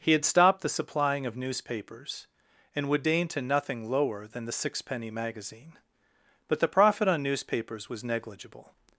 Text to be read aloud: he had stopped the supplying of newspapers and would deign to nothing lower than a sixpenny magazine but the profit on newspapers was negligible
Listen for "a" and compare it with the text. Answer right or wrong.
wrong